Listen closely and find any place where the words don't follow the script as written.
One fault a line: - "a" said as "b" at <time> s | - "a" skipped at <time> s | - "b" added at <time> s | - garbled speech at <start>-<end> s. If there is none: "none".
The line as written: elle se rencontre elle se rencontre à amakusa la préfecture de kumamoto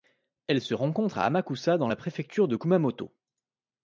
- "elle se rencontre" skipped at 1.2 s
- "dans" added at 1.8 s